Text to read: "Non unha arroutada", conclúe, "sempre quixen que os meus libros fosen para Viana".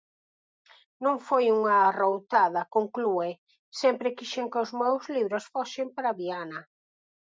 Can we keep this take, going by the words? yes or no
no